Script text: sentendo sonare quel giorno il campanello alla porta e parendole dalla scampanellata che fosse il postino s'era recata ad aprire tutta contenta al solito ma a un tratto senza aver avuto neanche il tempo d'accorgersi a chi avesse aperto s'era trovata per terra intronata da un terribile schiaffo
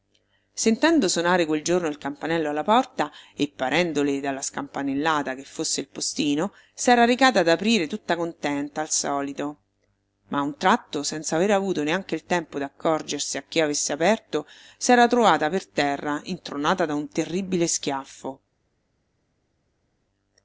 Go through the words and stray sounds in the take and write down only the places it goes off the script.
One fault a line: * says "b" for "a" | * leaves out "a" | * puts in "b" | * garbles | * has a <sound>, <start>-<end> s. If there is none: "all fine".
all fine